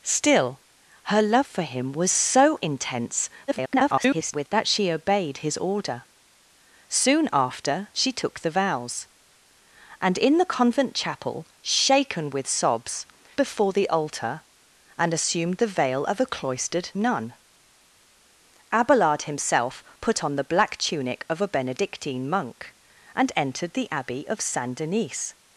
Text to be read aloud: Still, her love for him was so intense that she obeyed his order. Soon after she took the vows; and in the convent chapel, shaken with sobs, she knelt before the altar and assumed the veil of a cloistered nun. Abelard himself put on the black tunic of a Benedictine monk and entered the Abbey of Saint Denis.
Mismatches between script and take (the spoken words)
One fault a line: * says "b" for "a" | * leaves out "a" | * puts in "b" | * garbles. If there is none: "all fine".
* garbles
* leaves out "she knelt"